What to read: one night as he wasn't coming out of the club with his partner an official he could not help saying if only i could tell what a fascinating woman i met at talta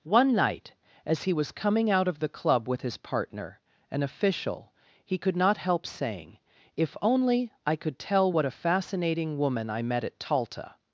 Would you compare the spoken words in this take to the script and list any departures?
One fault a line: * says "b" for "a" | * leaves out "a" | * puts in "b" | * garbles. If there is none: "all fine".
* says "was" for "wasn't"